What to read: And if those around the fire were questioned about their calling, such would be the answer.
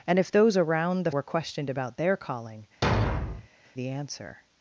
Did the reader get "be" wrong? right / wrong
wrong